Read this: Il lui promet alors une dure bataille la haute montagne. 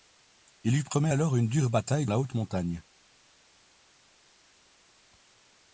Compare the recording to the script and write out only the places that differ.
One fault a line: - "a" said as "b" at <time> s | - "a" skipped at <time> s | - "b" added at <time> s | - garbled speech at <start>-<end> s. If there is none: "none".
none